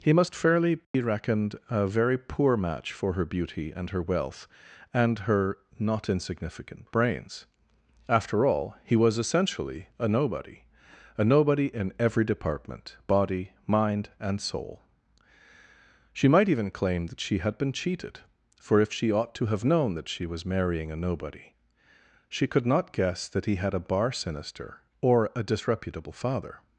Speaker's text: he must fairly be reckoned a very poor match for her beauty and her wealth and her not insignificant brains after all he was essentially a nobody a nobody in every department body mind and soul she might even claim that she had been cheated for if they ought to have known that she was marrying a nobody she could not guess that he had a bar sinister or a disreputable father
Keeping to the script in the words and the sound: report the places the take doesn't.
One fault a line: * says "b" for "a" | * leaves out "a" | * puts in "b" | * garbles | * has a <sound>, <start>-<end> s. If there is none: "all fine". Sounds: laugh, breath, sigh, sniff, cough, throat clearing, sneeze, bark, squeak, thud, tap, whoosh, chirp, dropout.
* has a dropout, 0.8-0.9 s
* says "she" for "they"